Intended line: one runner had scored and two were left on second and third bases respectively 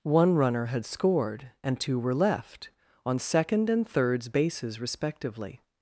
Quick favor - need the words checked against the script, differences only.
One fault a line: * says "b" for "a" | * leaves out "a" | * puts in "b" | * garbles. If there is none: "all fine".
* says "thirds" for "third"